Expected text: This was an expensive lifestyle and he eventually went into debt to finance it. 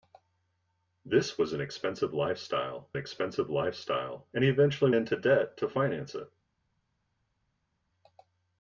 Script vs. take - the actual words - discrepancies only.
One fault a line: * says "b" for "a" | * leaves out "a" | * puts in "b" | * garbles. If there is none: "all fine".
* puts in "expensive lifestyle"
* leaves out "went"